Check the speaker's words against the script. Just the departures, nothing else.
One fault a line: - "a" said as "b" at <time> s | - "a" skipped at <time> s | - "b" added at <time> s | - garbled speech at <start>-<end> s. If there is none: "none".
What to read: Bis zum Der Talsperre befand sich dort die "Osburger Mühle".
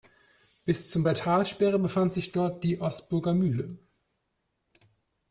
none